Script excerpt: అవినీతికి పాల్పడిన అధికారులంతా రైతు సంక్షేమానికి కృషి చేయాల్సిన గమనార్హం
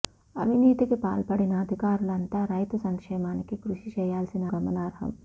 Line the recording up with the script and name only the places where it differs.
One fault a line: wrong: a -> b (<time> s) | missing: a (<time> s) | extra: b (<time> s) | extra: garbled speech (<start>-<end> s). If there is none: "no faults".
no faults